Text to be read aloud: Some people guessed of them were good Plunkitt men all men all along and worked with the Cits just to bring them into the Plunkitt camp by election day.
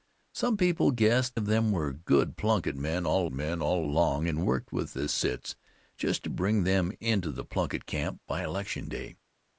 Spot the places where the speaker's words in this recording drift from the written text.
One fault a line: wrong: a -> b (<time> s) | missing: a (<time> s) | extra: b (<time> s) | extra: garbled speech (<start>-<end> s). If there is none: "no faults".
no faults